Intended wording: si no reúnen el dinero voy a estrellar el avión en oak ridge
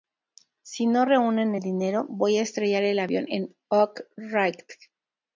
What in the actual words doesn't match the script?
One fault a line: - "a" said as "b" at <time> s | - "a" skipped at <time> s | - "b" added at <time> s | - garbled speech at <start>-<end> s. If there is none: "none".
none